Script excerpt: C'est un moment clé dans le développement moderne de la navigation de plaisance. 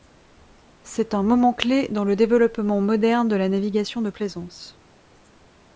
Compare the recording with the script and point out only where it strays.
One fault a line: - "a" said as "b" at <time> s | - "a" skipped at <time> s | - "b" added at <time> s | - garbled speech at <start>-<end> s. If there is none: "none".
none